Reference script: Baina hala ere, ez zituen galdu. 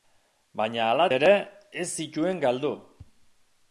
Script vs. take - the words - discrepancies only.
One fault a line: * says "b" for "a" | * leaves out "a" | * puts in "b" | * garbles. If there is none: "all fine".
all fine